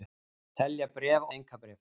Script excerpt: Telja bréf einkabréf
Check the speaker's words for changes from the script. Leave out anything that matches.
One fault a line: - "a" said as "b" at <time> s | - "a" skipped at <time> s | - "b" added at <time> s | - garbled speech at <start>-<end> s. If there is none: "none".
none